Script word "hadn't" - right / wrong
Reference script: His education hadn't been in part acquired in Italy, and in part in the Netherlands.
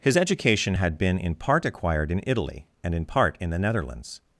wrong